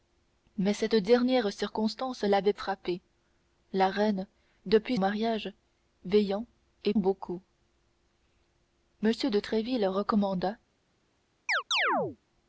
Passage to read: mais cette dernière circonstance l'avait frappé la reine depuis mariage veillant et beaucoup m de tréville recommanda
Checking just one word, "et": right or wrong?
right